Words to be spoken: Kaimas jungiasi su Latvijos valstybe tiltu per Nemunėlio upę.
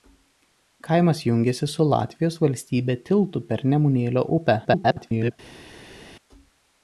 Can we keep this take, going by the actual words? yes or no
no